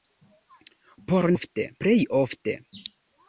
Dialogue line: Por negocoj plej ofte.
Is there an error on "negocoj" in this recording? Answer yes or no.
yes